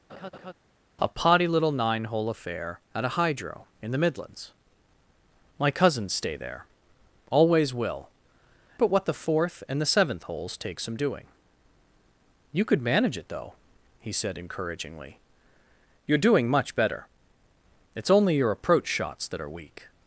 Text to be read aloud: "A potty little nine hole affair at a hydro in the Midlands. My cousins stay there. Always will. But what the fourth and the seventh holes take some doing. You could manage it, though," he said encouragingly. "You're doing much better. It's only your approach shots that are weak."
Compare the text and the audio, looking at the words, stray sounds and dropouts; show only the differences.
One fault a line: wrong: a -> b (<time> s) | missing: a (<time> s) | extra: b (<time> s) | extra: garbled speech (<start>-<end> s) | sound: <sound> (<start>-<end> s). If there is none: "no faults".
sound: laugh (0.1-0.5 s)